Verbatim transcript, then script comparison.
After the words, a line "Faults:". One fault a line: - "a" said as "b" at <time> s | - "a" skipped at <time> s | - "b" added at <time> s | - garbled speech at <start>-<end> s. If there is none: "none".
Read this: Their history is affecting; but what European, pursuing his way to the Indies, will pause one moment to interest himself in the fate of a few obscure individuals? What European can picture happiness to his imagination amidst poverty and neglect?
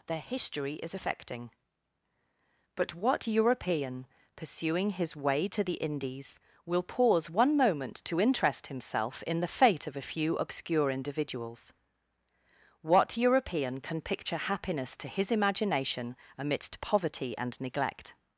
Their history is affecting; but what European, pursuing his way to the Indies, will pause one moment to interest himself in the fate of a few obscure individuals? What European can picture happiness to his imagination amidst poverty and neglect?
Faults:
none